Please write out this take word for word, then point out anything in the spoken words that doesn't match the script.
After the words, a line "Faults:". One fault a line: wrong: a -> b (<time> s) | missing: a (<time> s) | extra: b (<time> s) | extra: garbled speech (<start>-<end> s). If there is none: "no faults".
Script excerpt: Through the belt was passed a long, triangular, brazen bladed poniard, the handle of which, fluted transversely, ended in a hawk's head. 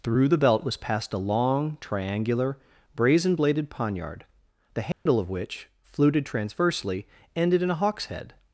Through the belt was passed a long, triangular, brazen bladed poniard, the handle of which, fluted transversely, ended in a hawk's head.
Faults:
no faults